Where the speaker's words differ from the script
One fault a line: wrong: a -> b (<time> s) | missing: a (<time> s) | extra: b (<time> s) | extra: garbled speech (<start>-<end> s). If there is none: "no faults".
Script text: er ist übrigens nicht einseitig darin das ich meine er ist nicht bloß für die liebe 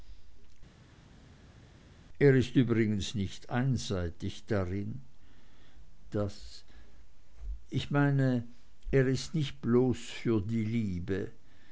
no faults